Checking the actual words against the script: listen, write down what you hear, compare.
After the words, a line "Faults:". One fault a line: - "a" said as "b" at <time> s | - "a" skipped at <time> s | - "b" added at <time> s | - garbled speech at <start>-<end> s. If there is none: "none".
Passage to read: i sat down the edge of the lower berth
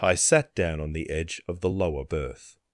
i sat down on the edge of the lower berth
Faults:
- "on" added at 0.8 s